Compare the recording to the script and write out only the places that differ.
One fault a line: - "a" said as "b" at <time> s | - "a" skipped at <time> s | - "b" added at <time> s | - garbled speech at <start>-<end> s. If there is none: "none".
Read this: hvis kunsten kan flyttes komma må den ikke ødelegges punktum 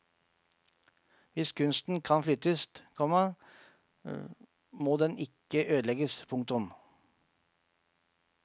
none